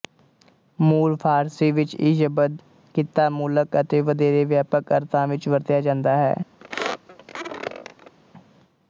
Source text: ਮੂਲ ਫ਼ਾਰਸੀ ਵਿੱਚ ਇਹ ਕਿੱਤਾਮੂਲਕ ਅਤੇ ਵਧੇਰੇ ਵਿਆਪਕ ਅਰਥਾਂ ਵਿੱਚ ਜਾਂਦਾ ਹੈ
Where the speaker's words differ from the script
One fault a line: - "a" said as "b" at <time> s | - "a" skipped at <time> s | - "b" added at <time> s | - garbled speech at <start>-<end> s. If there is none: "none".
- "ਸ਼ਬਦ" added at 2.1 s
- "ਵਰਤਿਆ" added at 5.5 s